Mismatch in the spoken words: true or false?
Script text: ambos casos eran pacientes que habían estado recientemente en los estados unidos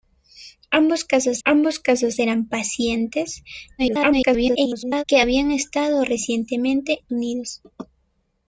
true